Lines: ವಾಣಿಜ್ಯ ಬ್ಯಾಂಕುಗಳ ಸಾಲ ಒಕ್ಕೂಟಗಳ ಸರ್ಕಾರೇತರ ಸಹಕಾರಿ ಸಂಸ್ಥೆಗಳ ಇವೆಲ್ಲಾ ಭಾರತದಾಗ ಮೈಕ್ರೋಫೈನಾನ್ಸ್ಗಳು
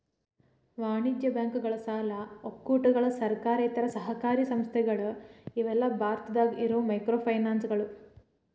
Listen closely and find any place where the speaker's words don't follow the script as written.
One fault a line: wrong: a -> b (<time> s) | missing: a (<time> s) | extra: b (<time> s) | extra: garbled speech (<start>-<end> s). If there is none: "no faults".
extra: ಇರೋ (6.6 s)